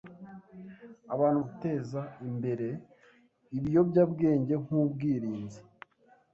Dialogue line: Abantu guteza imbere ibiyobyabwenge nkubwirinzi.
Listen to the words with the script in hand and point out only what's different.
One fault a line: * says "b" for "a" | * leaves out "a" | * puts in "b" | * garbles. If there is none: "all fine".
all fine